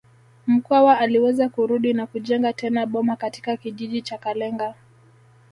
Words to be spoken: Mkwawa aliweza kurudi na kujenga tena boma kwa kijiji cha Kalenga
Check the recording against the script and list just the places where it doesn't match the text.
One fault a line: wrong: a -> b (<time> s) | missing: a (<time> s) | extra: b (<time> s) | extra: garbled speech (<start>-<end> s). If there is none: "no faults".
wrong: kwa -> katika (3.1 s)